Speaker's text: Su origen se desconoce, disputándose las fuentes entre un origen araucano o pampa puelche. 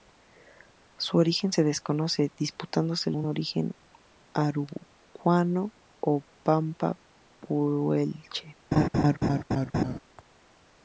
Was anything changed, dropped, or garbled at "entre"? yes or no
yes